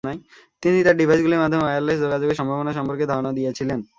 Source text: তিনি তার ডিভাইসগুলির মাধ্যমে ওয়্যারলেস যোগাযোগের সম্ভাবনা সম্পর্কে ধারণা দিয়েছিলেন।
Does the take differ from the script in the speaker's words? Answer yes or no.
no